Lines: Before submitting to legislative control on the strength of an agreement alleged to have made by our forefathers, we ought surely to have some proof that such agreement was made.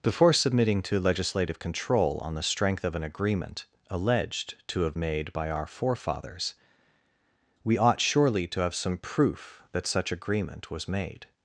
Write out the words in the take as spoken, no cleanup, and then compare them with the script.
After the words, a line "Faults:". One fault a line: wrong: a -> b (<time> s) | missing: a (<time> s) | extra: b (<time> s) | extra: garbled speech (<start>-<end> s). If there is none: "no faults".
Before submitting to legislative control on the strength of an agreement alleged to have made by our forefathers, we ought surely to have some proof that such agreement was made.
Faults:
no faults